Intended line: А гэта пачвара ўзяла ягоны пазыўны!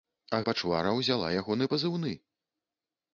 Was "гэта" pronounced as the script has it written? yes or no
no